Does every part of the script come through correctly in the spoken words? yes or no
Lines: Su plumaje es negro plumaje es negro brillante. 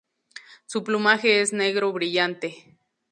no